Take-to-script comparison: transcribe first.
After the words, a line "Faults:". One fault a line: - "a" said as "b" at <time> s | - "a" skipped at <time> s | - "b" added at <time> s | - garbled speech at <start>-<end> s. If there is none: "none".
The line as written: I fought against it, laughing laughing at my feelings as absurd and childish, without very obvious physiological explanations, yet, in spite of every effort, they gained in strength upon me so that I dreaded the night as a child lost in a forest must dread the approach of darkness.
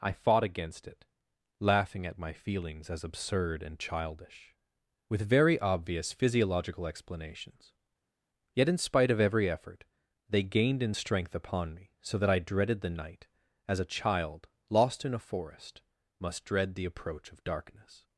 I fought against it, laughing at my feelings as absurd and childish, with very obvious physiological explanations, yet, in spite of every effort, they gained in strength upon me so that I dreaded the night as a child lost in a forest must dread the approach of darkness.
Faults:
- "laughing" skipped at 2.1 s
- "without" said as "with" at 5.1 s